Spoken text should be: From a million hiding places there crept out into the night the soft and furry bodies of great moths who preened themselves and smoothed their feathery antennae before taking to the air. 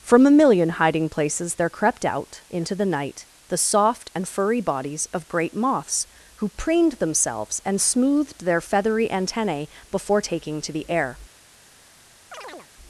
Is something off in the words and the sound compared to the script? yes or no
yes